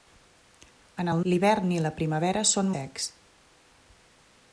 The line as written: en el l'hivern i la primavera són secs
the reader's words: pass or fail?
pass